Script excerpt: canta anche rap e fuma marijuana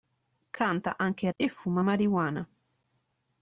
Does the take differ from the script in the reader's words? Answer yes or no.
yes